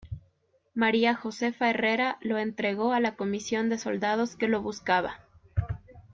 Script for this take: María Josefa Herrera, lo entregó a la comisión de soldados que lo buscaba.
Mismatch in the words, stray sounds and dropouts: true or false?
false